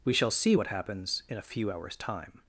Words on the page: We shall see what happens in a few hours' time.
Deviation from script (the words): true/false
false